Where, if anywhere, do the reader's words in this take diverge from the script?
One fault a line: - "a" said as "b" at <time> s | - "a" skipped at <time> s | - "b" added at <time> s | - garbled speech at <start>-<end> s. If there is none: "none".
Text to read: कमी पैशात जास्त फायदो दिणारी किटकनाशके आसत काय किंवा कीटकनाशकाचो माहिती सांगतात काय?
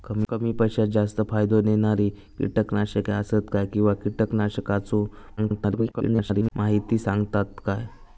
- garbled speech at 5.4-6.5 s